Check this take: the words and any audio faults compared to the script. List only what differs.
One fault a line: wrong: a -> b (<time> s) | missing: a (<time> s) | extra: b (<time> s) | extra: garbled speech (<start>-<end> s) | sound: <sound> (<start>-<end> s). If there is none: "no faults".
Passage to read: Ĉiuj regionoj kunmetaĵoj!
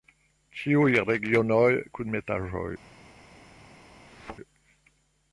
sound: thud (4.1-4.4 s)